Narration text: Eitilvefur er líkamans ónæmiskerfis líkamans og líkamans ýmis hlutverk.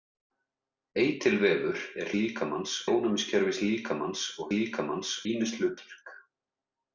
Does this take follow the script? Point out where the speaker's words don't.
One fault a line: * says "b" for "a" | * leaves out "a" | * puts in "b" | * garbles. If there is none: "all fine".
all fine